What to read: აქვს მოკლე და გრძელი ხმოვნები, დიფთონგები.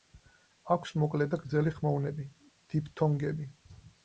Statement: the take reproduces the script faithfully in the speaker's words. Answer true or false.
true